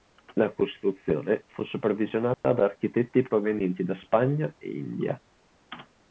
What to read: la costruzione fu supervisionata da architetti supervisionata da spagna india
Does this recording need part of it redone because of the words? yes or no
yes